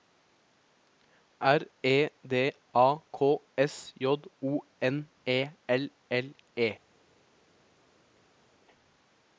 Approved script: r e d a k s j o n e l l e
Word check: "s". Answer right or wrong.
right